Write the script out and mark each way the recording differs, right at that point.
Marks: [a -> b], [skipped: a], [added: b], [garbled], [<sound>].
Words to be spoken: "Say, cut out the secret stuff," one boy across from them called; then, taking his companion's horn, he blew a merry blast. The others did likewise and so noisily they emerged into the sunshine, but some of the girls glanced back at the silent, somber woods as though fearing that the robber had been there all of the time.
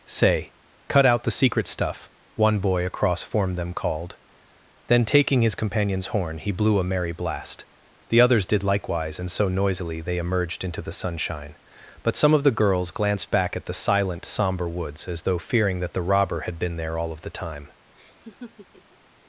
"Say, cut out the secret stuff," one boy across [from -> form] them called; then, taking his companion's horn, he blew a merry blast. The others did likewise and so noisily they emerged into the sunshine, but some of the girls glanced back at the silent, somber woods as though fearing that the robber had been there all of the time. [laugh]